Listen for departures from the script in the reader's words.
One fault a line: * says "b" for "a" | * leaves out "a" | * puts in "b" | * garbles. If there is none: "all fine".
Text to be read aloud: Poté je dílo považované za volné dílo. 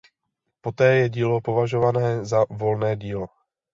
all fine